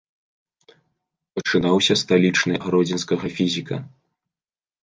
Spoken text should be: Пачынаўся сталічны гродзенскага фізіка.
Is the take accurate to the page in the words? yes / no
yes